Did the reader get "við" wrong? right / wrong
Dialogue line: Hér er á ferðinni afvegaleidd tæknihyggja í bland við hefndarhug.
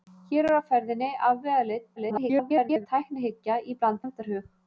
wrong